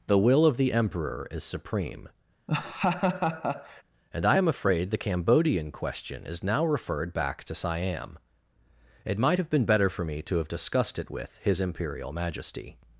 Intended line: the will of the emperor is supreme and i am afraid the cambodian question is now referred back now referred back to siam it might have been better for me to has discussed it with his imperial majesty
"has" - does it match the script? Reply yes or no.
no